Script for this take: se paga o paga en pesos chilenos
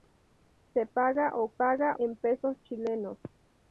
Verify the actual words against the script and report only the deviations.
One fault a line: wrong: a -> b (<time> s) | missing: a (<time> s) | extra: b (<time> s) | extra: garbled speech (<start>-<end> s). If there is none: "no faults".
no faults